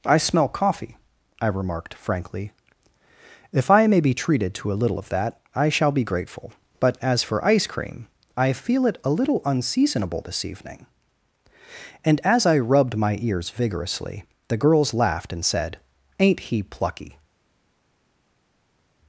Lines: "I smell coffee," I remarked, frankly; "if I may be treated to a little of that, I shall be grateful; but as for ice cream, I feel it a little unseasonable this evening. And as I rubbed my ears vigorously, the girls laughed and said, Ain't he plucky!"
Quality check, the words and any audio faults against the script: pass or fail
pass